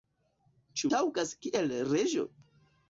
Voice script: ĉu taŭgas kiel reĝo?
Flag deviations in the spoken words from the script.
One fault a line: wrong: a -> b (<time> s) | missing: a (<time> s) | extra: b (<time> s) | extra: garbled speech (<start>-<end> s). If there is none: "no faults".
no faults